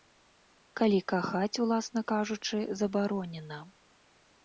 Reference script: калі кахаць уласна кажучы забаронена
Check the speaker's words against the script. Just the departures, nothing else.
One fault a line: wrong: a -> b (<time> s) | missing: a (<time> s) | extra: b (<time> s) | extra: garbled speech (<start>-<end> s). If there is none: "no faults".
no faults